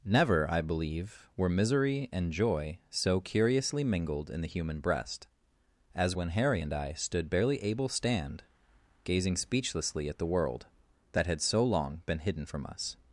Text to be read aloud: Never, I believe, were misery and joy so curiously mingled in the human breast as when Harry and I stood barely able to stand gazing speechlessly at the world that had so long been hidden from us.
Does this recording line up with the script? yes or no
no